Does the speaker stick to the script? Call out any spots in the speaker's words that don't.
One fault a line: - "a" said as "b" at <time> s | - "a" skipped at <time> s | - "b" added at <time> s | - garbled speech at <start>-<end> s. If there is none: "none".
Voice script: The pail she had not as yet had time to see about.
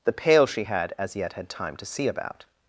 - "not" skipped at 0.9 s